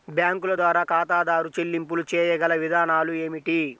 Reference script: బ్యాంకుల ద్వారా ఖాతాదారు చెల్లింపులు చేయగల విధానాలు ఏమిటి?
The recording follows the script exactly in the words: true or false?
true